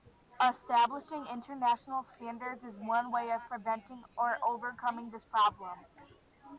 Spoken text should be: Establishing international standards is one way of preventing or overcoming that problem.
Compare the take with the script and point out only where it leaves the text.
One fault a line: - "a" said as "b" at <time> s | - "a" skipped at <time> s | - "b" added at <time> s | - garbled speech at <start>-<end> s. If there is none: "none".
- "that" said as "this" at 5.1 s